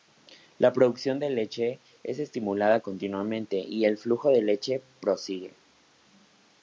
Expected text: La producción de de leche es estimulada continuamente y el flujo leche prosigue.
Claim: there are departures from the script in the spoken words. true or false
true